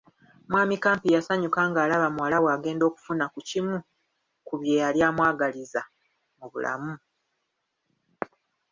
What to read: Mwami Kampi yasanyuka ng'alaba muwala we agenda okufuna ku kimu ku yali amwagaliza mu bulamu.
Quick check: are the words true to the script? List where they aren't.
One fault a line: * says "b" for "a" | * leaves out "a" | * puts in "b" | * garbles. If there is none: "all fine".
* puts in "bye"